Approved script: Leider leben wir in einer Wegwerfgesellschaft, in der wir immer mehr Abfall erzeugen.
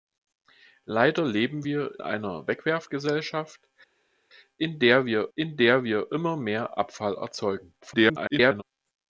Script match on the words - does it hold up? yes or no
no